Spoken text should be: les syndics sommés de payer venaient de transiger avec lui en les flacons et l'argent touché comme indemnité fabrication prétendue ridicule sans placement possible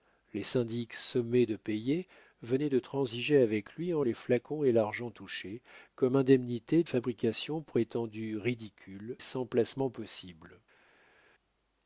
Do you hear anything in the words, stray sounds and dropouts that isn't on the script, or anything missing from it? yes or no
no